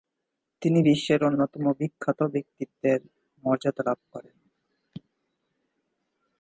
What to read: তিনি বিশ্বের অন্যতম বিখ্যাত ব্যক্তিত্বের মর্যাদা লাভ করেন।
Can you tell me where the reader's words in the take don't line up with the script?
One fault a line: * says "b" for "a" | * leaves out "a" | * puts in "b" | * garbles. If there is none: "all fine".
all fine